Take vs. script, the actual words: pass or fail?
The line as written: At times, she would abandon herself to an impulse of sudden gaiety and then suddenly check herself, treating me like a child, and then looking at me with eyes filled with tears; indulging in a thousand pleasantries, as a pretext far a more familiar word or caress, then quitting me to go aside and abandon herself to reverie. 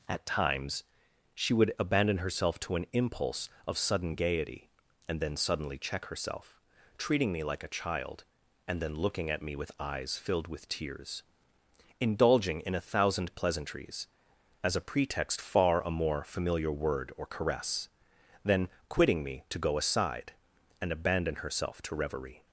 pass